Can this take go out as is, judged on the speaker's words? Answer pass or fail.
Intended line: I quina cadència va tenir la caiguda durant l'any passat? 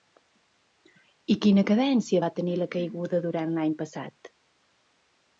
pass